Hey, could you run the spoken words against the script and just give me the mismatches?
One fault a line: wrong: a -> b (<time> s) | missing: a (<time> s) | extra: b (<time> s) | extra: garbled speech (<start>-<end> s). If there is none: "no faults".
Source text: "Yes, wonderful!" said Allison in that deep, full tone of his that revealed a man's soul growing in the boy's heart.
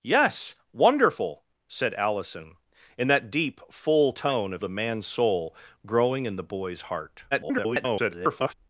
missing: his that revealed (4.6 s)
extra: garbled speech (7.3-8.5 s)